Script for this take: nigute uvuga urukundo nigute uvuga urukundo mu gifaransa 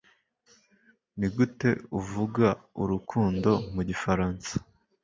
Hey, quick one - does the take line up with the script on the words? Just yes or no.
no